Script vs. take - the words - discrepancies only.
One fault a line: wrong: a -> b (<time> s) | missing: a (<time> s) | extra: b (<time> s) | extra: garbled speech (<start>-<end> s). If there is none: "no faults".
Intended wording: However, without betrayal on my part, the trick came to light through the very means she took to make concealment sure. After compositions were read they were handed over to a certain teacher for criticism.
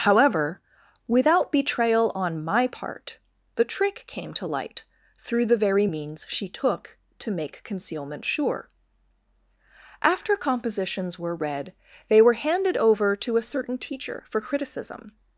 no faults